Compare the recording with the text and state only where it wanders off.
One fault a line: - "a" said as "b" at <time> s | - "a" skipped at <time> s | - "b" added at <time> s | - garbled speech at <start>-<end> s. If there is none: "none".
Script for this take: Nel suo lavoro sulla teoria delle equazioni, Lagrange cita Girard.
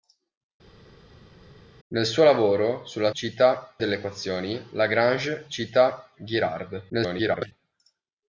- "teoria" said as "cita" at 3.1 s
- garbled speech at 6.9-7.5 s